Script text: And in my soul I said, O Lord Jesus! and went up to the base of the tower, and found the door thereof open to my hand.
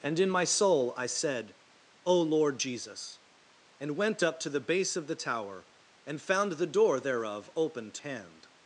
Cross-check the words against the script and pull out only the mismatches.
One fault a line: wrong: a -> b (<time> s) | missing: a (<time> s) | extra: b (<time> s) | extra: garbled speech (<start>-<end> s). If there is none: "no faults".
missing: my (8.0 s)